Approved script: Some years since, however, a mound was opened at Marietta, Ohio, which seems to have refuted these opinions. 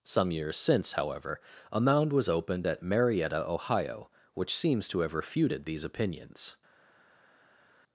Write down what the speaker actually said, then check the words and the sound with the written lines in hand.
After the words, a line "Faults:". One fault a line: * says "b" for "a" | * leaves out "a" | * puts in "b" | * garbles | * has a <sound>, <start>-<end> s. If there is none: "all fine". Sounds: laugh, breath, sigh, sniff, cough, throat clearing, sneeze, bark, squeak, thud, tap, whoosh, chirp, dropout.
Some years since, however, a mound was opened at Marietta, Ohio, which seems to have refuted these opinions.
Faults:
all fine